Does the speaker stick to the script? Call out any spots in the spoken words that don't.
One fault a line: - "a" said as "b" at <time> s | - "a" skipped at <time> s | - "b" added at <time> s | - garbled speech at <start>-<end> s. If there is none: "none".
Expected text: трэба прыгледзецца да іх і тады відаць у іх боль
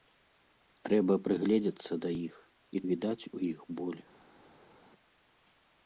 - "тады" skipped at 2.8 s